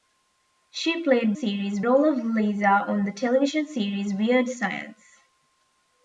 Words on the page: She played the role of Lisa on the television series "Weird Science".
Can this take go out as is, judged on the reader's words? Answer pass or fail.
fail